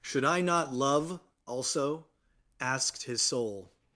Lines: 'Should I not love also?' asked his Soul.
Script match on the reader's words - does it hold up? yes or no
yes